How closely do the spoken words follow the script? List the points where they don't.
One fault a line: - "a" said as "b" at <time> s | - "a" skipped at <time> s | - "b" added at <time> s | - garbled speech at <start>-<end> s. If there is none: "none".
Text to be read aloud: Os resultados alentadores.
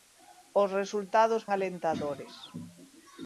none